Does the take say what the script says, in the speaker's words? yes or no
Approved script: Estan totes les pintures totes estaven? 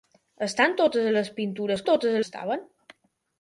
yes